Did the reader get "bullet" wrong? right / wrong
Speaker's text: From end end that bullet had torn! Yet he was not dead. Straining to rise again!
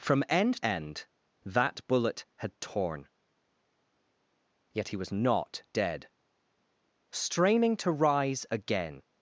right